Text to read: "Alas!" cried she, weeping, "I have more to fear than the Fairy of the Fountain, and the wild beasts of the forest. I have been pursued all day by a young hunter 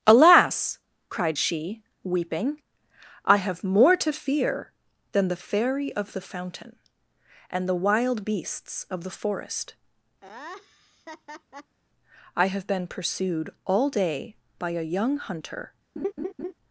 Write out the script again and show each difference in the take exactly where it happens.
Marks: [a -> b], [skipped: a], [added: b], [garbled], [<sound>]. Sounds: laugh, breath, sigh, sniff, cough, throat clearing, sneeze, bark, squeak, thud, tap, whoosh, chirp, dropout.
"Alas!" cried she, weeping, "I have more to fear than the Fairy of the Fountain, and the wild beasts of the forest. [laugh] I have been pursued all day by a young hunter [laugh]